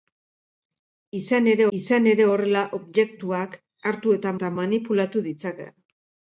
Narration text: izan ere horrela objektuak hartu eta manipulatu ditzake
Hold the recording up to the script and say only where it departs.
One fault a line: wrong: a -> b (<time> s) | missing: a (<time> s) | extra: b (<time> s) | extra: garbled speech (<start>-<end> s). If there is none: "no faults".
extra: izan ere (1.8 s)
extra: eta (4.4 s)